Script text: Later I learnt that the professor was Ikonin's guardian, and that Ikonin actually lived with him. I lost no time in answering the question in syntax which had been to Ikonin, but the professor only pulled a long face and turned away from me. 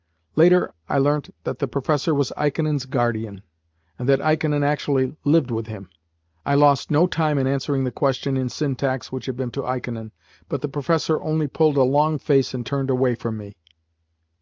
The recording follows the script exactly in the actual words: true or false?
true